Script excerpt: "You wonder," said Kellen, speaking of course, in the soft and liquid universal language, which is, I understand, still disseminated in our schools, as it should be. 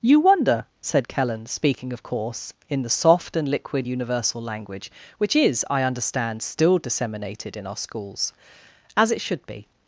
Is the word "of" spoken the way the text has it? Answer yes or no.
yes